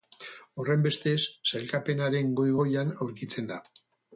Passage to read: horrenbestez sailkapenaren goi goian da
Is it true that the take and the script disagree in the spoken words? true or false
true